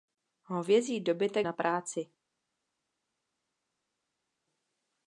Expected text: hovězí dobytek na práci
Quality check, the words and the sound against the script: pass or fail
pass